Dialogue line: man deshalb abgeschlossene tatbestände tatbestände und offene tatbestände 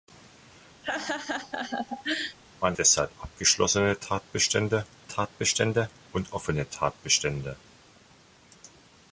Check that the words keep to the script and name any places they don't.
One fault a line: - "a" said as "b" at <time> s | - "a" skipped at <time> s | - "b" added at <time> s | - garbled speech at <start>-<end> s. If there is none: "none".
none